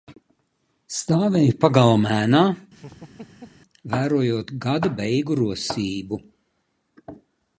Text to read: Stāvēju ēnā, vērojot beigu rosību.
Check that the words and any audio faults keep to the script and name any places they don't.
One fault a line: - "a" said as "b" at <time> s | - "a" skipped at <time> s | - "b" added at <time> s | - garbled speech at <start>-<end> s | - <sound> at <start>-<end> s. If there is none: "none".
- "pagalma" added at 1.6 s
- laugh at 2.7-3.6 s
- "gada" added at 4.7 s